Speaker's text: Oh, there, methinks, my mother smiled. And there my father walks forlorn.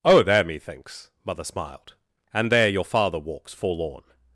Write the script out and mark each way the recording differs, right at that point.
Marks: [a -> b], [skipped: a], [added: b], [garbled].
Oh, there, methinks, [skipped: my] mother smiled. And there [my -> your] father walks forlorn.